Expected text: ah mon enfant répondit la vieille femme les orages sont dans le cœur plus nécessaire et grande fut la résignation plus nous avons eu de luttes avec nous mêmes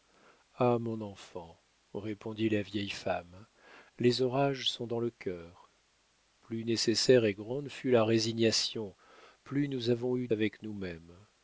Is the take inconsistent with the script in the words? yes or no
yes